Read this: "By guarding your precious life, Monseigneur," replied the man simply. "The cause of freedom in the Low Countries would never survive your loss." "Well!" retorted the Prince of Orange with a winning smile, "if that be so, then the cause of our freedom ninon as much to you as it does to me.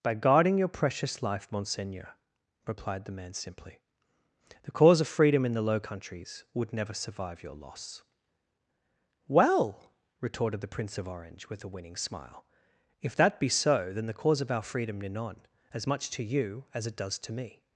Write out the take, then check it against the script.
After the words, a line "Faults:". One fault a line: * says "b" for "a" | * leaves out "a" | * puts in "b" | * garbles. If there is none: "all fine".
"By guarding your precious life, Monseigneur," replied the man simply. "The cause of freedom in the Low Countries would never survive your loss." "Well!" retorted the Prince of Orange with a winning smile, "if that be so, then the cause of our freedom ninon as much to you as it does to me.
Faults:
all fine